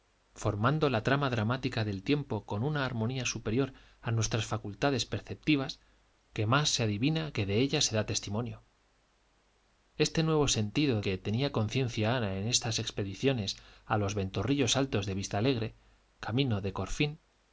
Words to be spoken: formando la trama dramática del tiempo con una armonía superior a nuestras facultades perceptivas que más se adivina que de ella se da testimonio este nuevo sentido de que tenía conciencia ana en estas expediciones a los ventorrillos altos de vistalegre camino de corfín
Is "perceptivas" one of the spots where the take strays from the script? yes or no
no